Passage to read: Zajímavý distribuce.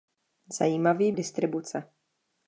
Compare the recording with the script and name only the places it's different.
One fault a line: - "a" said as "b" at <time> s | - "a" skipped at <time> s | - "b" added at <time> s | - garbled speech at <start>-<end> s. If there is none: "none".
none